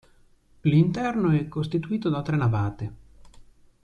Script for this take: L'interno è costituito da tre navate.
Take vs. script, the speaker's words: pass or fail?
pass